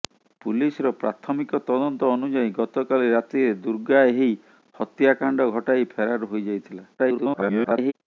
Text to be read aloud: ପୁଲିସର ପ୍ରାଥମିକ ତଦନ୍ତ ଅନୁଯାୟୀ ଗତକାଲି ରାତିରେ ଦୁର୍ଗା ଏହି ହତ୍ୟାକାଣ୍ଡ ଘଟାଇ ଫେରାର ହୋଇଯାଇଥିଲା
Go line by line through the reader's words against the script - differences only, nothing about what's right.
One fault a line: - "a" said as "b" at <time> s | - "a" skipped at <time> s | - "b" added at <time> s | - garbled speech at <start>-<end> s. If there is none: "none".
- garbled speech at 7.0-7.9 s